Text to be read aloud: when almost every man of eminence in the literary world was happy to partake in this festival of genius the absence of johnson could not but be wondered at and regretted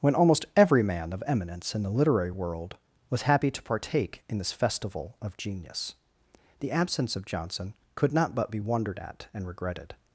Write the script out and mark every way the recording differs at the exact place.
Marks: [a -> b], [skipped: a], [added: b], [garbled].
when almost every man of eminence in the literary world was happy to partake in this festival of genius the absence of johnson could not but be wondered at and regretted